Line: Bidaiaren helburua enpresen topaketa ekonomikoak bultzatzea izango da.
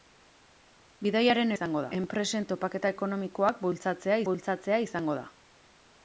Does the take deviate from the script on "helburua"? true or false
true